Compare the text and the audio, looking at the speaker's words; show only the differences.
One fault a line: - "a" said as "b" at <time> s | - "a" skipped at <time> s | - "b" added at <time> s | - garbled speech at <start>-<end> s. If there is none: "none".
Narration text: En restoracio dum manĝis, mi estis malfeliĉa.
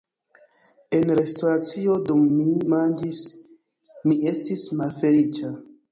- "mi" added at 2.4 s